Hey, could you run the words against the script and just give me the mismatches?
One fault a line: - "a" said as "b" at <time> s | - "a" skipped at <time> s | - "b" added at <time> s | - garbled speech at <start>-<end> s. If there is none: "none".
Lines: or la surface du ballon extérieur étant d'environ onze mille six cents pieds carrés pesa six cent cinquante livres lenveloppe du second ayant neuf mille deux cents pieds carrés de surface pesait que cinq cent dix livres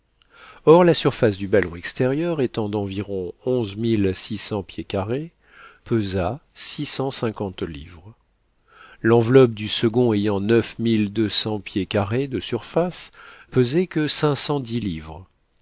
none